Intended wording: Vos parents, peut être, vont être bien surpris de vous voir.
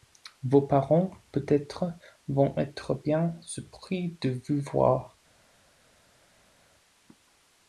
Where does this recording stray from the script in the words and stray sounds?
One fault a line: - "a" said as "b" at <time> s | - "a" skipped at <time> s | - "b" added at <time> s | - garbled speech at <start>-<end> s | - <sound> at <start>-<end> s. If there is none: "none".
none